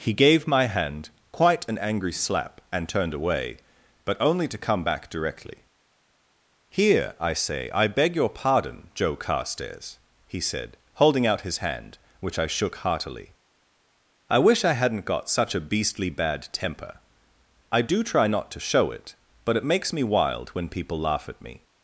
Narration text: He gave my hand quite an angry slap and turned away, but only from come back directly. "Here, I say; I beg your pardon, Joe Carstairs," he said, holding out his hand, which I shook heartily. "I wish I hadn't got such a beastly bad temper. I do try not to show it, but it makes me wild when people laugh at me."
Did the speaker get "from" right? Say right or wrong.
wrong